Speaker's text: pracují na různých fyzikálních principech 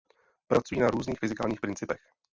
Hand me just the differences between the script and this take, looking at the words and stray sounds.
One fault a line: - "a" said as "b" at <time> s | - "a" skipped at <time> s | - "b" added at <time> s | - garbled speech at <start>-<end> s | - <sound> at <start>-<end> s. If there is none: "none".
none